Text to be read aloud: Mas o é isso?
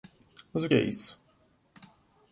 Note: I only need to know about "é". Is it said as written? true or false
true